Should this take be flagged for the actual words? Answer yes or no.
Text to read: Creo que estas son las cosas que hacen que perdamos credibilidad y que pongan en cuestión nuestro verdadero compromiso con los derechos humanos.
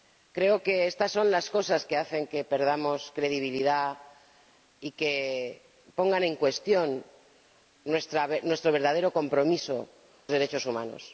yes